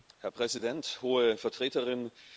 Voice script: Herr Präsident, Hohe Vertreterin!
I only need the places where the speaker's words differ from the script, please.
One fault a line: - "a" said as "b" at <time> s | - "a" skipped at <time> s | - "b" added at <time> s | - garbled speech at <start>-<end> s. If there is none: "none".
none